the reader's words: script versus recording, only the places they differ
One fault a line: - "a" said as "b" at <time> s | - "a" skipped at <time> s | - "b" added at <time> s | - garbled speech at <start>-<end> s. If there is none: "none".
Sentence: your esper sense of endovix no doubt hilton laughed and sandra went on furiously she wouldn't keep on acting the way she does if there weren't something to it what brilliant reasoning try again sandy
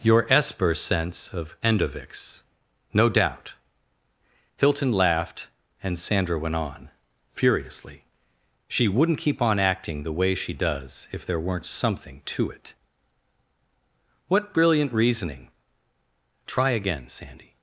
none